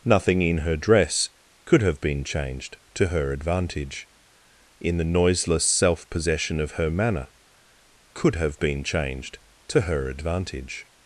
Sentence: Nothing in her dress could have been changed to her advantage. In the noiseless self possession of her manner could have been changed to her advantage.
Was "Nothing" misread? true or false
false